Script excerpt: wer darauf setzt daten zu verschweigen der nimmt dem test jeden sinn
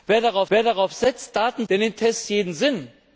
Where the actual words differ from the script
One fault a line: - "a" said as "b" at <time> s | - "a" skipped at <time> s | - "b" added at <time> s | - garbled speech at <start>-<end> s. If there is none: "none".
- "wer darauf" added at 0.5 s
- "zu verschweigen" skipped at 1.7 s
- "dem" skipped at 2.0 s